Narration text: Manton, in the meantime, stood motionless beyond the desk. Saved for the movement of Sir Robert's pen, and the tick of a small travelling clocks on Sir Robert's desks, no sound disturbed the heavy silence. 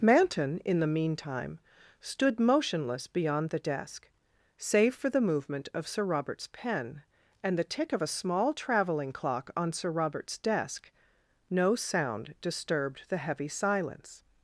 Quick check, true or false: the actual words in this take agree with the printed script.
false